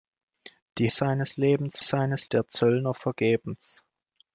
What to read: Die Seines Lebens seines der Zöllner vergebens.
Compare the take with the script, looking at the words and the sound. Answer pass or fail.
pass